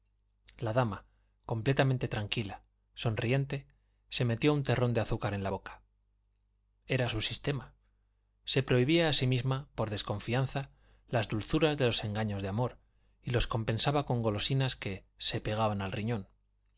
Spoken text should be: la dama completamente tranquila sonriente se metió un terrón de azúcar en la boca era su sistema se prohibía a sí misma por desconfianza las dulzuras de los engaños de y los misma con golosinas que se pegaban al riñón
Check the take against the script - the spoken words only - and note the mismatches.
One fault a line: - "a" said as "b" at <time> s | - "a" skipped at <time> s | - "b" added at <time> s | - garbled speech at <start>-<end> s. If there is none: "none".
- "amor" added at 12.5 s
- "misma" said as "compensaba" at 13.5 s